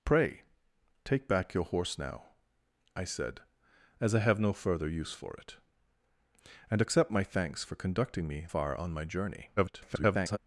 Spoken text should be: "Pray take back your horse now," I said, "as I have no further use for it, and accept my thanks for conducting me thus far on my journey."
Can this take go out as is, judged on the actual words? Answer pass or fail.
fail